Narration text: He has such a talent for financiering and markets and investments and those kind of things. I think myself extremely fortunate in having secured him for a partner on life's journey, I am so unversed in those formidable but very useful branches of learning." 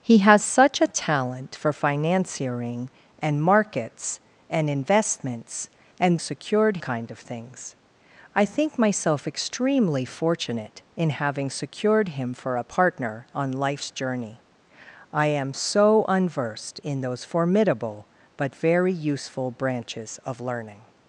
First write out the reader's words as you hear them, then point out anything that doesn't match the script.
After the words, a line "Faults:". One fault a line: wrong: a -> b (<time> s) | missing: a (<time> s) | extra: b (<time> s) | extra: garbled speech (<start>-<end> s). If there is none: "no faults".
He has such a talent for financiering and markets and investments and secured kind of things. I think myself extremely fortunate in having secured him for a partner on life's journey, I am so unversed in those formidable but very useful branches of learning."
Faults:
wrong: those -> secured (6.2 s)